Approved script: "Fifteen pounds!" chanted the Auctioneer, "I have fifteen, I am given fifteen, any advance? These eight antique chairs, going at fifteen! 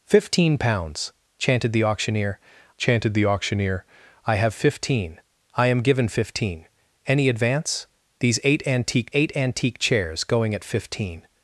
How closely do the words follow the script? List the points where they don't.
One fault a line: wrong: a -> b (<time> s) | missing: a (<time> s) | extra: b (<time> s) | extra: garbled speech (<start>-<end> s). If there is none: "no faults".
extra: chanted the Auctioneer (2.8 s)
extra: eight antique (9.1 s)